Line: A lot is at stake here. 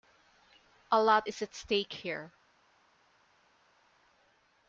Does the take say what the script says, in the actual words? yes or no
yes